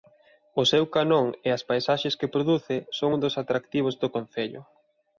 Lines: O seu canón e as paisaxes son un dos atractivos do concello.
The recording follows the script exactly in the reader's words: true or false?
false